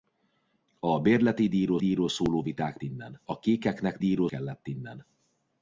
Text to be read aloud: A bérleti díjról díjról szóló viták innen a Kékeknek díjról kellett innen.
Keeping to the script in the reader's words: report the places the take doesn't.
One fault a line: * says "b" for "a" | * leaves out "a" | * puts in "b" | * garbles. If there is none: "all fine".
all fine